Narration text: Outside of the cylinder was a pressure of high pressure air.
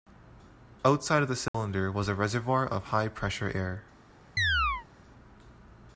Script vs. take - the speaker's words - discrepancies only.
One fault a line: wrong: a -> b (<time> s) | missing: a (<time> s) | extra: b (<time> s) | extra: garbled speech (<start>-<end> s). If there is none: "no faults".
wrong: pressure -> reservoir (2.1 s)